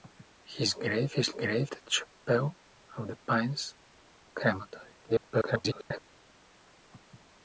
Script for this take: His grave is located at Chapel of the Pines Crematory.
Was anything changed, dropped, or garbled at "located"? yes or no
yes